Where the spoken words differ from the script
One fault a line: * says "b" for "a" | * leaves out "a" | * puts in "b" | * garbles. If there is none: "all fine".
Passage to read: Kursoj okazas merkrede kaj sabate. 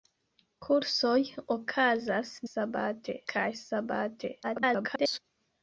* says "sabate" for "merkrede"
* garbles